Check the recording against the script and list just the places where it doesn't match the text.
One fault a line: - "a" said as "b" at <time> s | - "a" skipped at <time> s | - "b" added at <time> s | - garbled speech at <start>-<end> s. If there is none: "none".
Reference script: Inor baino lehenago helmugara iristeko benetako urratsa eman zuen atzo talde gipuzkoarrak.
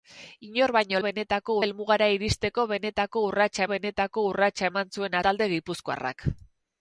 - "lehenago" said as "benetako" at 1.1 s
- "benetako urratsa" added at 3.7 s
- "atzo" skipped at 5.2 s